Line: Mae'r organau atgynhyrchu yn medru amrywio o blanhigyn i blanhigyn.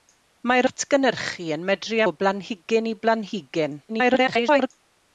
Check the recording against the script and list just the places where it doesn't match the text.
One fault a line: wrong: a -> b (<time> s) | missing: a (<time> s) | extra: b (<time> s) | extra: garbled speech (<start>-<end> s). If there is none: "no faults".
missing: organau (0.7 s)
missing: amrywio (2.0 s)
extra: garbled speech (3.9-4.7 s)